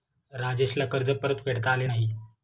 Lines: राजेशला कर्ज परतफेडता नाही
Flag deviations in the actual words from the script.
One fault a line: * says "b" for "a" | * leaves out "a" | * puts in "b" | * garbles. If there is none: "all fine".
* puts in "आले"